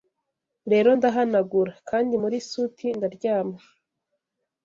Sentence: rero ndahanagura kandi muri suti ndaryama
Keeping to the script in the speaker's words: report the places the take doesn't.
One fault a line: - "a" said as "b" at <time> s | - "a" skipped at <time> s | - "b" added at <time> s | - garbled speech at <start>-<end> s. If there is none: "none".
none